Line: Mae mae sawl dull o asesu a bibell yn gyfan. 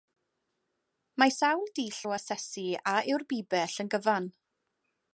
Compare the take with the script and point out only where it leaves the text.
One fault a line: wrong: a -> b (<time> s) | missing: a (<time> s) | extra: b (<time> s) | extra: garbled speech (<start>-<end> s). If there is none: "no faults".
missing: mae (1.3 s)
extra: yw'r (3.1 s)